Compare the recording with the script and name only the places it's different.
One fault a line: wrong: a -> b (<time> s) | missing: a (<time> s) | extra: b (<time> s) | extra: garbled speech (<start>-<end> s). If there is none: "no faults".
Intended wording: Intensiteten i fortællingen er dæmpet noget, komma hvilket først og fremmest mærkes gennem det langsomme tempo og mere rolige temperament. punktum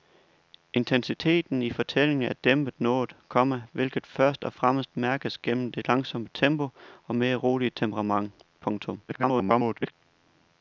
extra: garbled speech (9.1-9.9 s)